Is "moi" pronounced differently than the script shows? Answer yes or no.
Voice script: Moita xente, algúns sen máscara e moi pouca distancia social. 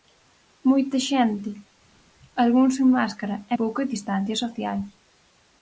yes